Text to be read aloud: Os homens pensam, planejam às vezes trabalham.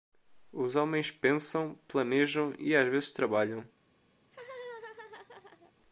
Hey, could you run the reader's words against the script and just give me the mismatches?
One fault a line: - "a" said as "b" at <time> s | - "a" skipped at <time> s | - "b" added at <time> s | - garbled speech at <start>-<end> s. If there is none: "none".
- "e" added at 2.6 s